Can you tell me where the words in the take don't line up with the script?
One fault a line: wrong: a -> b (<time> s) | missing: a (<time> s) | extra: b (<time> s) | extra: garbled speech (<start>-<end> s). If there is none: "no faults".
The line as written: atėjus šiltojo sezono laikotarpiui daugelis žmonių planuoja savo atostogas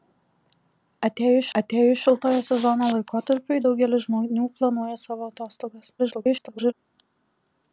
extra: atėjus (1.6 s)
extra: garbled speech (6.0-6.7 s)